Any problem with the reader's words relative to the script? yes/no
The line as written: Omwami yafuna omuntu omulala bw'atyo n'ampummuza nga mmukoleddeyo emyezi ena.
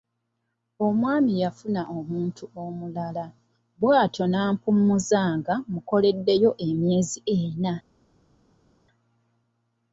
no